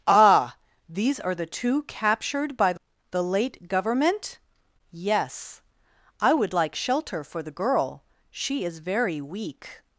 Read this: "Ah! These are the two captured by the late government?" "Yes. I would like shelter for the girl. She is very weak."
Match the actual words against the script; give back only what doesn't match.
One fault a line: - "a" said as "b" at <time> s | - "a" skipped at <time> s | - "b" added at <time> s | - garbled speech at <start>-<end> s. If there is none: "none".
none